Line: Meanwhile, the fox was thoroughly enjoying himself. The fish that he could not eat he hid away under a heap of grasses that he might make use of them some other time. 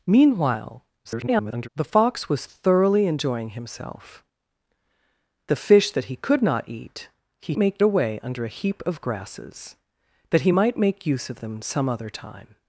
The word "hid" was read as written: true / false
false